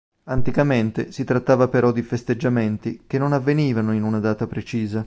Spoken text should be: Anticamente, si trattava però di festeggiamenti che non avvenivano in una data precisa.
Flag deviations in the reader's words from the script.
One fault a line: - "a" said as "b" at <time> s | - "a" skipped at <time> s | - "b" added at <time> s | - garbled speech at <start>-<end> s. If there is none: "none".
none